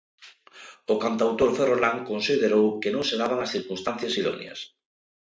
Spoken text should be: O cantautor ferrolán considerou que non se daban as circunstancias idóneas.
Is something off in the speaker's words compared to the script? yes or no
no